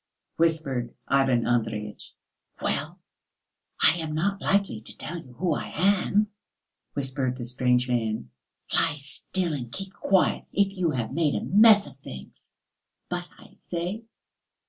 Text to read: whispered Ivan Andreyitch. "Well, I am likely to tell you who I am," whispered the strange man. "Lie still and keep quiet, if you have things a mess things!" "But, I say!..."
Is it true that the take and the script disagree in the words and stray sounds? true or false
true